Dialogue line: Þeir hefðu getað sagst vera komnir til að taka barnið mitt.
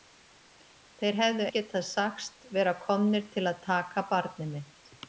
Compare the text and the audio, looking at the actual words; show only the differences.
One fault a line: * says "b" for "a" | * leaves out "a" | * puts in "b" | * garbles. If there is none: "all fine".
all fine